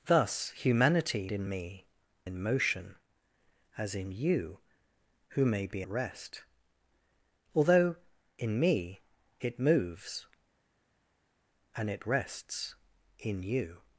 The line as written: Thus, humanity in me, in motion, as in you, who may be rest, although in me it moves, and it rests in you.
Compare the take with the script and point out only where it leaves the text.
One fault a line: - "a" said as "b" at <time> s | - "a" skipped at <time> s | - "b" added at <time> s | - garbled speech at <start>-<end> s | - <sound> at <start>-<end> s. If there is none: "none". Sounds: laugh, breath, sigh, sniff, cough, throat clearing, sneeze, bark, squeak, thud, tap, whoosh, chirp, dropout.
none